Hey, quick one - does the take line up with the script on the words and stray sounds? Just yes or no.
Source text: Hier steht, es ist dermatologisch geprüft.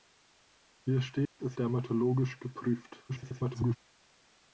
no